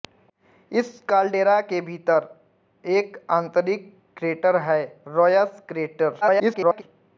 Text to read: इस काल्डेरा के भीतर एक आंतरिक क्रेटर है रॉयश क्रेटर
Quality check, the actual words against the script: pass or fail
fail